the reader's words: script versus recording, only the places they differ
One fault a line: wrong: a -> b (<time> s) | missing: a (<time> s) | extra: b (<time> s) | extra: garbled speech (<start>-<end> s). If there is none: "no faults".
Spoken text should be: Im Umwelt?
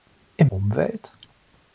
no faults